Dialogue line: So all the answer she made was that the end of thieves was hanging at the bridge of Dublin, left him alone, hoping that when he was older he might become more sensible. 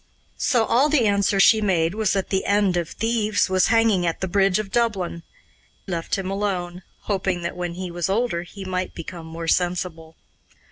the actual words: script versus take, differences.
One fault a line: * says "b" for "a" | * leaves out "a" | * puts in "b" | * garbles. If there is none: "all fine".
all fine